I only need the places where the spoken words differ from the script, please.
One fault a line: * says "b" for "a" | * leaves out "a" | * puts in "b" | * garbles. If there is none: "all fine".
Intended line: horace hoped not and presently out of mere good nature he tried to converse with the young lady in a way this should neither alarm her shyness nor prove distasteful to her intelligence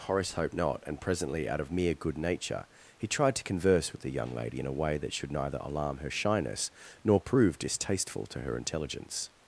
* says "that" for "this"